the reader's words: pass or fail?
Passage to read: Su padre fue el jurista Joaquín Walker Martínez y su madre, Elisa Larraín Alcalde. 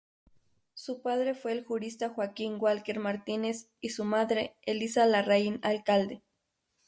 pass